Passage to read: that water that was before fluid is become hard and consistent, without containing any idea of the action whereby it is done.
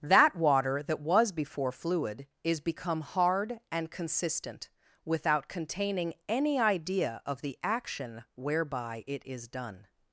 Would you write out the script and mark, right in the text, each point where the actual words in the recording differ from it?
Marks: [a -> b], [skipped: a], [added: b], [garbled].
that water that was before fluid is become hard and consistent, without containing any idea of the action whereby it is done.